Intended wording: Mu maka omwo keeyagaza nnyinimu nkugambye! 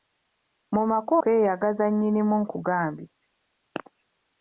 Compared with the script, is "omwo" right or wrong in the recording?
wrong